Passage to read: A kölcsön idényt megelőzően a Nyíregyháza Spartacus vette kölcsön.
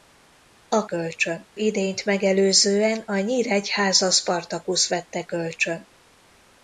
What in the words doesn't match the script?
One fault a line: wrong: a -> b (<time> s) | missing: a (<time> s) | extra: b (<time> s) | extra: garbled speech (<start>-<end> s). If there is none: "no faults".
no faults